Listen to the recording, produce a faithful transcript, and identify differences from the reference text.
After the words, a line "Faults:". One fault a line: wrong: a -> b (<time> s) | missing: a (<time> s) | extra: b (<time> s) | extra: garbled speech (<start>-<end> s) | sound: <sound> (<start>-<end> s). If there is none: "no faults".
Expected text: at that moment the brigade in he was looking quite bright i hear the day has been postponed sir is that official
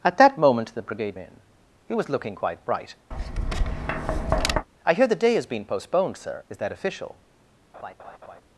at that moment the brigade in he was looking quite bright i hear the day has been postponed sir is that official
Faults:
sound: tap (3.1-4.7 s)
sound: laugh (7.7-8.4 s)